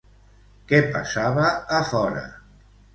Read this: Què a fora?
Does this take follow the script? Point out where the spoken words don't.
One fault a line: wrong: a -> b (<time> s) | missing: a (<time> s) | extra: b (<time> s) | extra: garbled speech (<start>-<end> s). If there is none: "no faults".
extra: passava (1.0 s)